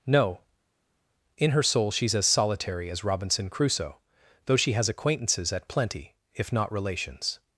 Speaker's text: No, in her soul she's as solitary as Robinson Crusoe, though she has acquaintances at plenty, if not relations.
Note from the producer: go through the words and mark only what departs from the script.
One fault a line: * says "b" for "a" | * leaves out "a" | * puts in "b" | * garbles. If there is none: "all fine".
all fine